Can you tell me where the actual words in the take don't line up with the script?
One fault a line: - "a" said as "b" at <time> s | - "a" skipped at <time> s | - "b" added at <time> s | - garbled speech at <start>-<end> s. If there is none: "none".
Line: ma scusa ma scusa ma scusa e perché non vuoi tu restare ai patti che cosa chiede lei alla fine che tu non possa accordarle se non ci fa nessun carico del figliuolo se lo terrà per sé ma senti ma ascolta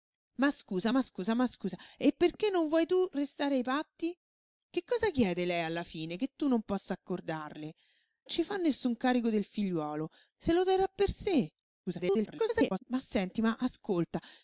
- "se non" skipped at 7.7 s
- garbled speech at 11.9-12.8 s